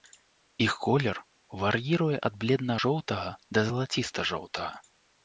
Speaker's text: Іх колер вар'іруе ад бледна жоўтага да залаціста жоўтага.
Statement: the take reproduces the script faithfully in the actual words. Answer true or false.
true